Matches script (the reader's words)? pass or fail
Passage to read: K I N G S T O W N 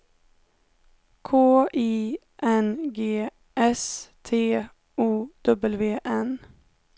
pass